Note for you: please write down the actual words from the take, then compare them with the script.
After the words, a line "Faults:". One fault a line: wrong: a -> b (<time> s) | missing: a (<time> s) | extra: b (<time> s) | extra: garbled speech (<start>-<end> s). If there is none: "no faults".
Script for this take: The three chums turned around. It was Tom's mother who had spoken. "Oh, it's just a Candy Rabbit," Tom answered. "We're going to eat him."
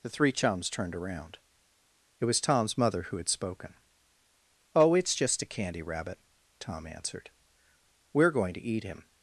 The three chums turned around. It was Tom's mother who had spoken. "Oh, it's just a Candy Rabbit," Tom answered. "We're going to eat him."
Faults:
no faults